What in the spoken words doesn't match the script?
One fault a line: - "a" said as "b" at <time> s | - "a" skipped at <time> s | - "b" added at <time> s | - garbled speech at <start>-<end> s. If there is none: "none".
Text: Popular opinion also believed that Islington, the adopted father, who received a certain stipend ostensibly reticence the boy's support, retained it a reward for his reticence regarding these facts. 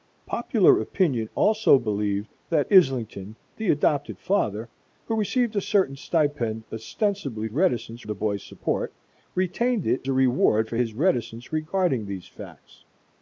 none